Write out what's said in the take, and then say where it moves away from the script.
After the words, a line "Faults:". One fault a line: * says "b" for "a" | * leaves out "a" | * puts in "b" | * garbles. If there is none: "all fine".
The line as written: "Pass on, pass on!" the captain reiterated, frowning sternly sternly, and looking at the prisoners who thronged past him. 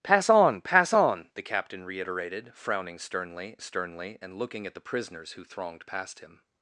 "Pass on, pass on!" the captain reiterated, frowning sternly sternly, and looking at the prisoners who thronged past him.
Faults:
all fine